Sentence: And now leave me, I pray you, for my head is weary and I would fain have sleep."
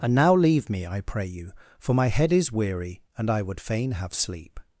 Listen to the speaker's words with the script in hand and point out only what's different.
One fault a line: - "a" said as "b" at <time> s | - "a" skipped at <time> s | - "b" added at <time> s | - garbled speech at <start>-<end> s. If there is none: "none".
none